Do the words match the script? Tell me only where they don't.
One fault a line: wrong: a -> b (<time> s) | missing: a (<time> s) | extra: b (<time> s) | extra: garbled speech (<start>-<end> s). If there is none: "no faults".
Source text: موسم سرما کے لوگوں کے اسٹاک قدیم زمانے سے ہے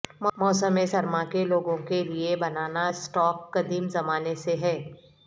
extra: لئے بنانا (2.0 s)